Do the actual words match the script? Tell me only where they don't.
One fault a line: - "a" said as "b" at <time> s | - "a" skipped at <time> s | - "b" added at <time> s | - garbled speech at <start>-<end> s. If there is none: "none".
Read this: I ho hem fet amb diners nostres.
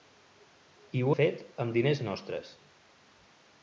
- "hem" skipped at 1.1 s